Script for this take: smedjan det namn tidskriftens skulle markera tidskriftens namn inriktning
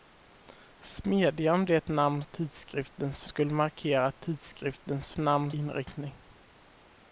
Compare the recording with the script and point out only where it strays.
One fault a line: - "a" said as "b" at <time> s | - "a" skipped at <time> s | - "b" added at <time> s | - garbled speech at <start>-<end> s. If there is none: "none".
none